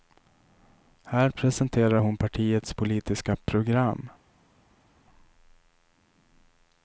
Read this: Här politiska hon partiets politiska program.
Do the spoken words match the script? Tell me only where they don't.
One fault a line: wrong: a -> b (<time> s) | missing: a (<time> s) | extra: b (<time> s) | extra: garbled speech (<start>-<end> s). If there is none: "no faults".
wrong: politiska -> presenterar (1.3 s)